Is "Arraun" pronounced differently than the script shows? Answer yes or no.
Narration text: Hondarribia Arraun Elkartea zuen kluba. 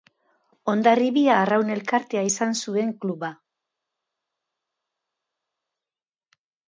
no